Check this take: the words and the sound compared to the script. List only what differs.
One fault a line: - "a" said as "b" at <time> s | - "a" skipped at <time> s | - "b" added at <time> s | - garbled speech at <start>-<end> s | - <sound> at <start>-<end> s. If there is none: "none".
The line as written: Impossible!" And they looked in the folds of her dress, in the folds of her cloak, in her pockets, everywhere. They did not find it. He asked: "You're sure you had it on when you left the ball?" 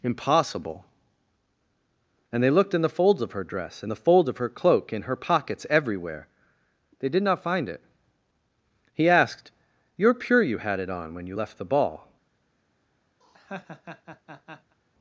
- "sure" said as "pure" at 10.1 s
- laugh at 13.2-14.8 s